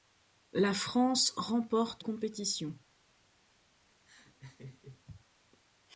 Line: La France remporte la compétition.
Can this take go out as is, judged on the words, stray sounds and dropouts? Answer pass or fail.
fail